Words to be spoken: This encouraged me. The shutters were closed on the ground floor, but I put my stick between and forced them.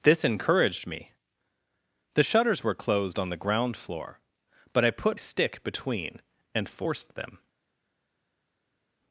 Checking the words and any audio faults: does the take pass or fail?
fail